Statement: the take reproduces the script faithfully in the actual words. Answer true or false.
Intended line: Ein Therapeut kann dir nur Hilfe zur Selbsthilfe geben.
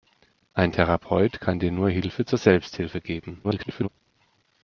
false